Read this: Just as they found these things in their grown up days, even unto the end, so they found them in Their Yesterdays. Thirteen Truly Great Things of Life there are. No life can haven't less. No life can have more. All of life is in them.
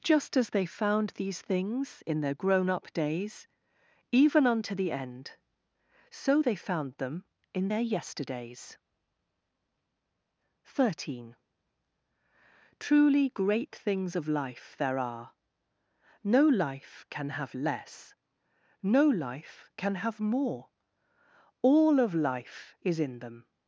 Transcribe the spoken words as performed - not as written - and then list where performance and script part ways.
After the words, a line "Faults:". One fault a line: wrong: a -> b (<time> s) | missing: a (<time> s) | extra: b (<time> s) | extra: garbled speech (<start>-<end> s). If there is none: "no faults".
Just as they found these things in their grown up days, even unto the end, so they found them in Their Yesterdays. Thirteen Truly Great Things of Life there are. No life can have less. No life can have more. All of life is in them.
Faults:
wrong: haven't -> have (17.3 s)